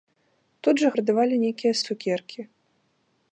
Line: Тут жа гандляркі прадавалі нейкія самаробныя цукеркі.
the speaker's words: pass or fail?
fail